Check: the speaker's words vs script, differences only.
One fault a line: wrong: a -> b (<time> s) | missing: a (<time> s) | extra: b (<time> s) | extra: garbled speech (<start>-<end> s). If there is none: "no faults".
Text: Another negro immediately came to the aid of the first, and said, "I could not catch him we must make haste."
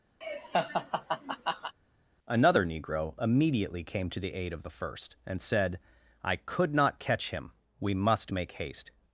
no faults